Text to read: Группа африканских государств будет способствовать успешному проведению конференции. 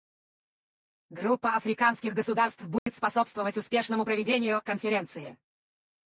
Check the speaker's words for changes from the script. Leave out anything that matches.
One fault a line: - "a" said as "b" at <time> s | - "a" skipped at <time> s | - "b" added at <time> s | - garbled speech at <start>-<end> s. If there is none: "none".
none